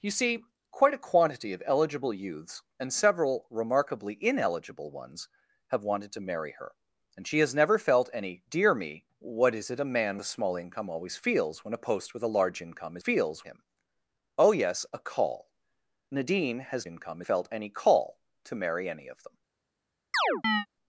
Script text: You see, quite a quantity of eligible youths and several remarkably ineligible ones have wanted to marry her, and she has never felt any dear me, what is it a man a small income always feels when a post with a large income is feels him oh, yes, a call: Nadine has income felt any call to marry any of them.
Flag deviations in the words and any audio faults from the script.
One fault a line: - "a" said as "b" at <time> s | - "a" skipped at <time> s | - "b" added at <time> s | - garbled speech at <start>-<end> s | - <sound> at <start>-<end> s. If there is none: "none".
- chirp at 20.1-20.7 s